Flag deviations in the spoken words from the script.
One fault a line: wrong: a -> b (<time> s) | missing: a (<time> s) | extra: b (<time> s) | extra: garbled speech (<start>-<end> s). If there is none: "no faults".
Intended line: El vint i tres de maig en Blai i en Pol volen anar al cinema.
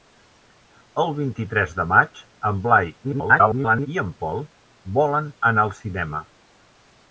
extra: garbled speech (3.0-3.9 s)